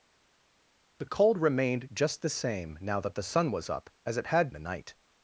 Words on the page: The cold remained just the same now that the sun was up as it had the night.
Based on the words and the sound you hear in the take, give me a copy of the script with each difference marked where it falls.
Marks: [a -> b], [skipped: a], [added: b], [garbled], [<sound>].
The cold remained just the same now that the sun was up as it had the night.